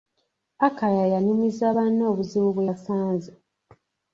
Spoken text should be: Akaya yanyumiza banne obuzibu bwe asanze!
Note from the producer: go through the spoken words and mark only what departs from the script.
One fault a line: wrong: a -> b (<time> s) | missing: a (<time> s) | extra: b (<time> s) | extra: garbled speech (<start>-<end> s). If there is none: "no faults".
no faults